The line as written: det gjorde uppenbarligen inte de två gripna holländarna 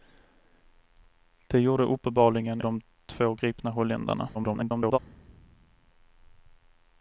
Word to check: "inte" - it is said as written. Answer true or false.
false